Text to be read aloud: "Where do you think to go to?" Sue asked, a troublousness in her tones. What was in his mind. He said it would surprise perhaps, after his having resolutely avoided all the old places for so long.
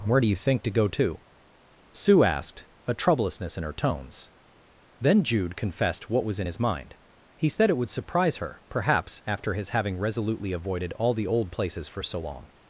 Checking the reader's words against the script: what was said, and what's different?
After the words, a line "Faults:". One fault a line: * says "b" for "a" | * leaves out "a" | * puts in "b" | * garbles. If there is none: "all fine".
"Where do you think to go to?" Sue asked, a troublousness in her tones. Then Jude confessed what was in his mind. He said it would surprise her, perhaps, after his having resolutely avoided all the old places for so long.
Faults:
* puts in "Then Jude confessed"
* puts in "her"